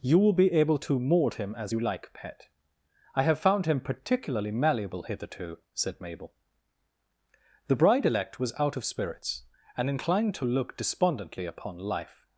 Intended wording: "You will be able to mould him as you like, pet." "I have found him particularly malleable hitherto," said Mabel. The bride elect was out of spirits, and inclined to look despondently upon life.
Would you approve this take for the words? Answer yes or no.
yes